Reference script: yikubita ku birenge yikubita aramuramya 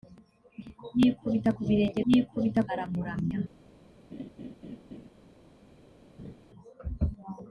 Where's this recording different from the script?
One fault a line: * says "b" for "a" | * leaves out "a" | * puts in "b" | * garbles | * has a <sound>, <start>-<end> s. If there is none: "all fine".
* has a laugh, 4.1-5.1 s
* has a laugh, 6.2-6.3 s